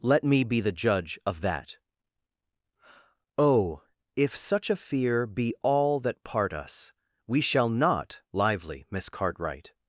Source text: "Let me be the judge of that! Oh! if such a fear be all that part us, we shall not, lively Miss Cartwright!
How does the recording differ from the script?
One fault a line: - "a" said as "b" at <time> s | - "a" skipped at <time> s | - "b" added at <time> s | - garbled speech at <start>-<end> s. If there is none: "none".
none